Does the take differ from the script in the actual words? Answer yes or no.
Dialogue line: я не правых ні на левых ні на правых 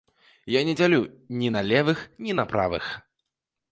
yes